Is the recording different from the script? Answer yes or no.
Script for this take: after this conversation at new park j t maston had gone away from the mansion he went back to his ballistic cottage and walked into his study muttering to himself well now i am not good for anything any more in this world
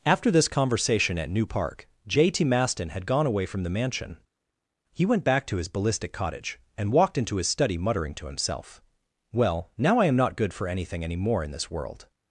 no